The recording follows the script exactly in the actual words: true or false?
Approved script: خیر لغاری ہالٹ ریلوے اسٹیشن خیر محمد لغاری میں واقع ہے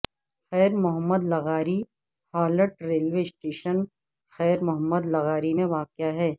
false